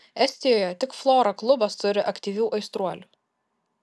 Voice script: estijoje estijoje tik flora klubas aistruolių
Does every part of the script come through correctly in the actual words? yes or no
no